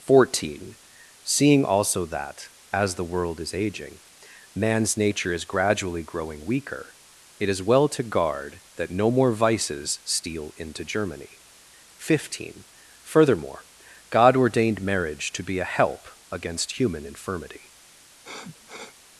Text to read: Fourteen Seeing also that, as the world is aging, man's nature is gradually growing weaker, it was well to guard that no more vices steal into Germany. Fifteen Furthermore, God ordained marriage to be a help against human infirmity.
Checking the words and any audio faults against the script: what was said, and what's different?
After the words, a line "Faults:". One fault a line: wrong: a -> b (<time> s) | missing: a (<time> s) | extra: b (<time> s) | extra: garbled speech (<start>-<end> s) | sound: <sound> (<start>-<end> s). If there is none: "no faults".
Fourteen Seeing also that, as the world is aging, man's nature is gradually growing weaker, it is well to guard that no more vices steal into Germany. Fifteen Furthermore, God ordained marriage to be a help against human infirmity.
Faults:
wrong: was -> is (7.5 s)
sound: sniff (18.2-19.0 s)